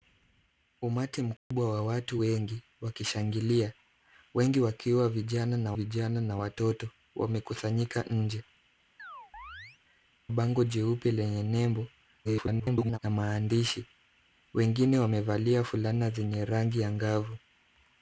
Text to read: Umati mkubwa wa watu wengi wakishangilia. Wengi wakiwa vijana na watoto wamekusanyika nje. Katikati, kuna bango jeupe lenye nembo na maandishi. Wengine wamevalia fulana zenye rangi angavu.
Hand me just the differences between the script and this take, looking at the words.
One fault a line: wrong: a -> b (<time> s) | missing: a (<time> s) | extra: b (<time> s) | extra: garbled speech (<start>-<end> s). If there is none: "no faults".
extra: vijana na (5.7 s)
missing: Katikati kuna (8.4 s)
extra: garbled speech (12.2-13.0 s)